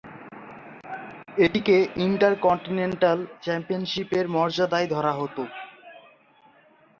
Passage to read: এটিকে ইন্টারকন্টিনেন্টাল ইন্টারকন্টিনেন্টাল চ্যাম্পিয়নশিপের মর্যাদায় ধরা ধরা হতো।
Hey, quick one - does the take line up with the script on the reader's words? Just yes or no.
no